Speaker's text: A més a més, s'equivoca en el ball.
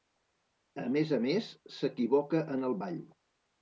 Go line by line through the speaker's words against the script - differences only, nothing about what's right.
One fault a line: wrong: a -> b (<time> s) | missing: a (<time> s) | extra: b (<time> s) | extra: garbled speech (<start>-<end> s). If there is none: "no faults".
no faults